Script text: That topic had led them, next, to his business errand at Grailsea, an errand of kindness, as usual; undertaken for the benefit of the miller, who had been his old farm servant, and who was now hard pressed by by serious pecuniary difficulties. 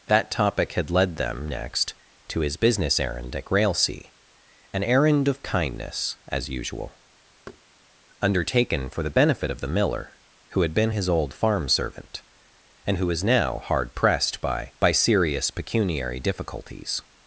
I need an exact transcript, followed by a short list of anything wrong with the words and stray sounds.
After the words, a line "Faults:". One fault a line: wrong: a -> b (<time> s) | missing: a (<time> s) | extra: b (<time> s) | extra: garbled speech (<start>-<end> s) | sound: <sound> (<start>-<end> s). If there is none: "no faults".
That topic had led them, next, to his business errand at Grailsea, an errand of kindness, as usual; undertaken for the benefit of the miller, who had been his old farm servant, and who was now hard pressed by by serious pecuniary difficulties.
Faults:
sound: thud (7.5-7.6 s)